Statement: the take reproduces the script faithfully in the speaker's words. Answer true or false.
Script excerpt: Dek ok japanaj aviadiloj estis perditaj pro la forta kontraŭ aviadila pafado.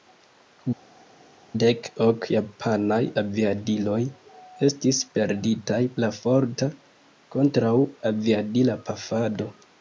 false